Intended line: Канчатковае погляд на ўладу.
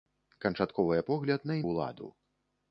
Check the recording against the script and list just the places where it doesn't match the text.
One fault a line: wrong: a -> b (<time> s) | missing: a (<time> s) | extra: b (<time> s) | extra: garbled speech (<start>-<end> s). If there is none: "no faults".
no faults